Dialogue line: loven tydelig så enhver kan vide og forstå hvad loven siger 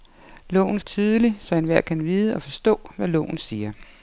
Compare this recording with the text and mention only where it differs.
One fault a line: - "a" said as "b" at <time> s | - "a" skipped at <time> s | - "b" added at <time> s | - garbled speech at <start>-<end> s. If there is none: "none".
none